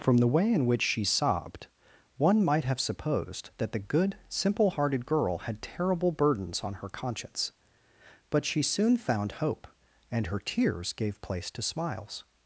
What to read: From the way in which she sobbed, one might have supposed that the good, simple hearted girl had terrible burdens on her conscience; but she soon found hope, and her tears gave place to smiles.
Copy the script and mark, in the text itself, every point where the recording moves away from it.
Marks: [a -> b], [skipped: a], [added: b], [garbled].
From the way in which she sobbed, one might have supposed that the good, simple hearted girl had terrible burdens on her conscience; but she soon found hope, and her tears gave place to smiles.